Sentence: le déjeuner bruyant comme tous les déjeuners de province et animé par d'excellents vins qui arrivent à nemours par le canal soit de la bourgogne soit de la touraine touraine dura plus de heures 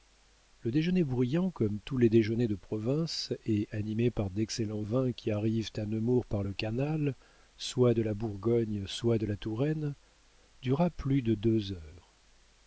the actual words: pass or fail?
fail